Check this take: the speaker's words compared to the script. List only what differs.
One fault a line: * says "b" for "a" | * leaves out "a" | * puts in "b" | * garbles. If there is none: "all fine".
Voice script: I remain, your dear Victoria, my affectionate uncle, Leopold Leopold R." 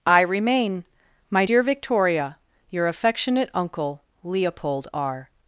* says "my" for "your"
* says "your" for "my"
* leaves out "Leopold"